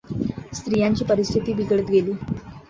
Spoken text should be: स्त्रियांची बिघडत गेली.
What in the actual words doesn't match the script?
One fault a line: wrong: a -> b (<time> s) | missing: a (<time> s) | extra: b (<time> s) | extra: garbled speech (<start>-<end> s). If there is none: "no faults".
extra: परिस्थिती (1.1 s)